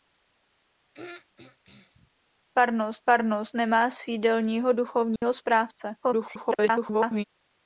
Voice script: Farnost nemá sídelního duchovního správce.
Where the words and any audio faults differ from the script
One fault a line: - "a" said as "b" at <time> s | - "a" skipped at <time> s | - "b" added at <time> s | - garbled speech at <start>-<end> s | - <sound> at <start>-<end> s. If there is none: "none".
- throat clearing at 0.9-2.1 s
- "farnost" added at 3.1 s
- dropout at 5.2-5.2 s
- garbled speech at 6.0-7.2 s